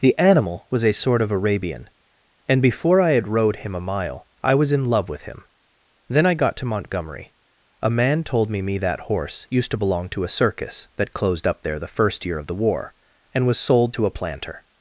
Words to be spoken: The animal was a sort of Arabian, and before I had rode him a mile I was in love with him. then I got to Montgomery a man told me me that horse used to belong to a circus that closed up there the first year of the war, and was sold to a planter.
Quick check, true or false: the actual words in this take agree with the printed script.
true